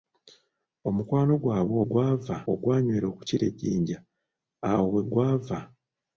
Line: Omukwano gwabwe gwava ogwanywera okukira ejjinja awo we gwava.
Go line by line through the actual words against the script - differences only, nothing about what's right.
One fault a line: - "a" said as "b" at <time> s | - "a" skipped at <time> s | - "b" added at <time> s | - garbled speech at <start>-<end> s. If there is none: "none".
none